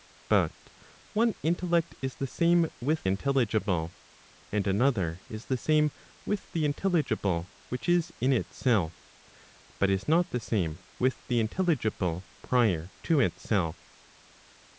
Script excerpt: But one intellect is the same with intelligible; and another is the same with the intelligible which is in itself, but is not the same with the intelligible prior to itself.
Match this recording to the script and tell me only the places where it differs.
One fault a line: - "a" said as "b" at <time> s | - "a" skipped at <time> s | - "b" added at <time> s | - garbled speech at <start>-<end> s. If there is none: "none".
none